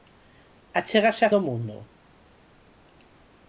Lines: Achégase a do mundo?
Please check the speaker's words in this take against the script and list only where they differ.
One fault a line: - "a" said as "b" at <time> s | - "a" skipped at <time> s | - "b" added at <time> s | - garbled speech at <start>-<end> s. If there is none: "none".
none